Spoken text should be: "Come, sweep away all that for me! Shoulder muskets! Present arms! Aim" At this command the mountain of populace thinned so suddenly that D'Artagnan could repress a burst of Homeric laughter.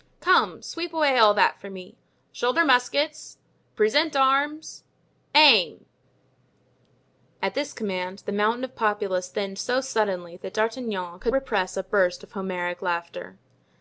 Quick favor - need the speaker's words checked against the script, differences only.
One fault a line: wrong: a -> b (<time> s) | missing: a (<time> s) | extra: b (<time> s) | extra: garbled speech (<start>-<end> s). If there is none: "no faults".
no faults